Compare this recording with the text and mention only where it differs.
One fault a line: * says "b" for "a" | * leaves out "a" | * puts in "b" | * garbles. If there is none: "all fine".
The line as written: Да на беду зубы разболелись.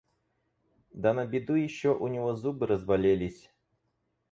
* puts in "еще у него"